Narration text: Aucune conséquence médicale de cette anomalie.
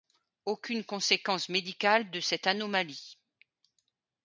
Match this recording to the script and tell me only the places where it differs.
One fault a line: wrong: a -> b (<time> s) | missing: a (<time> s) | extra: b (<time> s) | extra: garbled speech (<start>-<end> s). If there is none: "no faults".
no faults